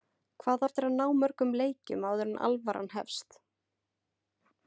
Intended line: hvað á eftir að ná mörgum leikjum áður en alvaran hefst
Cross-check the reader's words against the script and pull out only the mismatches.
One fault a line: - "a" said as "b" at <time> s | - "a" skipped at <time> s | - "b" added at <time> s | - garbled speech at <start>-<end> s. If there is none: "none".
none